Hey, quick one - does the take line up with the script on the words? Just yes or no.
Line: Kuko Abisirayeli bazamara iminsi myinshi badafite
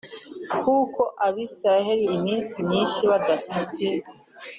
no